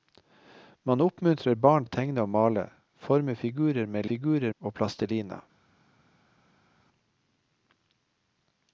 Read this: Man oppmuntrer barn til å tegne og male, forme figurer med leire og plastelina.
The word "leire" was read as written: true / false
false